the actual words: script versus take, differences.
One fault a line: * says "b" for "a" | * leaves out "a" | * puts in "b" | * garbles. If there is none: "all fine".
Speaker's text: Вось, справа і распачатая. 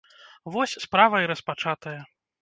all fine